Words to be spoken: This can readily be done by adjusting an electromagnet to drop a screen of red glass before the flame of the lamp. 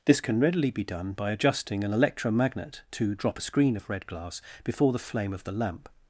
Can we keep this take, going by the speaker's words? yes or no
yes